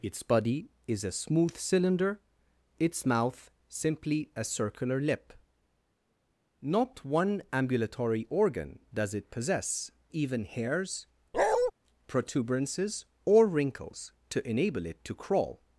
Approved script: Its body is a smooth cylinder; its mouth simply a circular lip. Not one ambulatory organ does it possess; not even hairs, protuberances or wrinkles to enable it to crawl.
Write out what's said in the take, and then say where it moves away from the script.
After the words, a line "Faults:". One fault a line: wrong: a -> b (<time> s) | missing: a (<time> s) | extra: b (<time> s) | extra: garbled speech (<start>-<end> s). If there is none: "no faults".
Its body is a smooth cylinder; its mouth simply a circular lip. Not one ambulatory organ does it possess; even hairs, protuberances or wrinkles to enable it to crawl.
Faults:
missing: not (9.9 s)